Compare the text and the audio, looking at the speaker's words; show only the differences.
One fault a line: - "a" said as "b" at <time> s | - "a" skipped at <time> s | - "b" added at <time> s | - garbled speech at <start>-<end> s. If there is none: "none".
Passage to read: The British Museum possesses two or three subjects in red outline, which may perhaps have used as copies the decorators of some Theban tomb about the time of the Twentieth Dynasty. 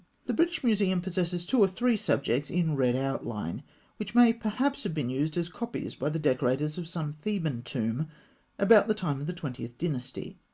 - "been" added at 4.9 s
- "by" added at 5.9 s